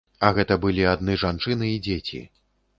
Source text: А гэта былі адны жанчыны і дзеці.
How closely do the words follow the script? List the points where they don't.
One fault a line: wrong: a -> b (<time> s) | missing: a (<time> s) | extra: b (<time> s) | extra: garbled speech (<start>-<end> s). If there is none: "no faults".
no faults